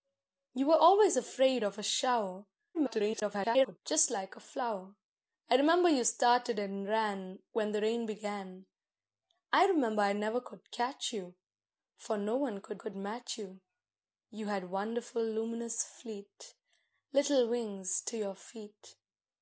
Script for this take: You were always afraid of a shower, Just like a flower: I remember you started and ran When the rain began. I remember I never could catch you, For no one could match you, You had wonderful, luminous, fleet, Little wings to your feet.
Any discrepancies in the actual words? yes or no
yes